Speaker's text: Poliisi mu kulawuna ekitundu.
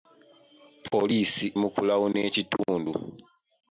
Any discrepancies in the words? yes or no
no